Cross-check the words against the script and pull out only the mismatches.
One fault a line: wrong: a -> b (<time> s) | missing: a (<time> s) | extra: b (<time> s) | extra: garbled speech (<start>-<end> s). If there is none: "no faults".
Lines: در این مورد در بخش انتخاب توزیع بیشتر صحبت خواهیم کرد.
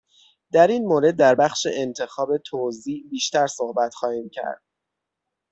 no faults